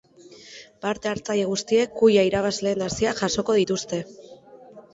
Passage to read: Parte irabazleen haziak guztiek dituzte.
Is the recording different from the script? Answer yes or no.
yes